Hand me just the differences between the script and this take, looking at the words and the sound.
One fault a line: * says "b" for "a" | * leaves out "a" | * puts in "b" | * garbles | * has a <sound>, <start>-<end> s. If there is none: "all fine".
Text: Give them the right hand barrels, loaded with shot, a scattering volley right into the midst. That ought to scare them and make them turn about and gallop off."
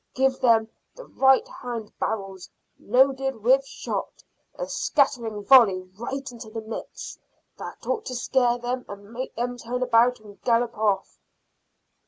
all fine